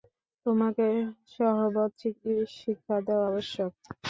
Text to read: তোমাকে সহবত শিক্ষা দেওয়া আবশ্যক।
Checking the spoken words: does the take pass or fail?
pass